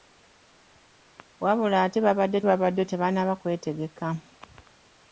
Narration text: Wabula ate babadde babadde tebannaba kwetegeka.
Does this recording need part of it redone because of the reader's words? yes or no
no